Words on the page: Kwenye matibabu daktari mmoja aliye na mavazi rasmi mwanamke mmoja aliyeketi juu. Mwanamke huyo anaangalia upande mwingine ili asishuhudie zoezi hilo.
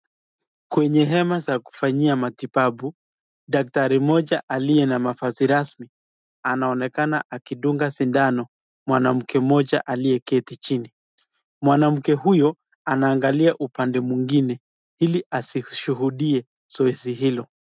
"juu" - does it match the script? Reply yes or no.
no